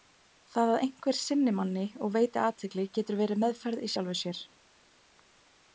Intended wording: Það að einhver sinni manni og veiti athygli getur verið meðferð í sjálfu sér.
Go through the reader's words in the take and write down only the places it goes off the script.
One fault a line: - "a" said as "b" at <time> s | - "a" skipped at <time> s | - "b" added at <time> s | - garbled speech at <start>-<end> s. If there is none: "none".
none